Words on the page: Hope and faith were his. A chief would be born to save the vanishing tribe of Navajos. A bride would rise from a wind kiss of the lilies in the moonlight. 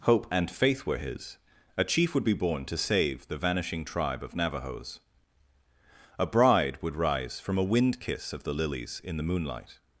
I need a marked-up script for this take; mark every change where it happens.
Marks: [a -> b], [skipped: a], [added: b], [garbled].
Hope and faith were his. A chief would be born to save the vanishing tribe of Navajos. A bride would rise from a wind kiss of the lilies in the moonlight.